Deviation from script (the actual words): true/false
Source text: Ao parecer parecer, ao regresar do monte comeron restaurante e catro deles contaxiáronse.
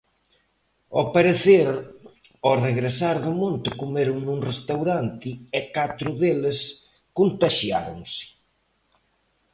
true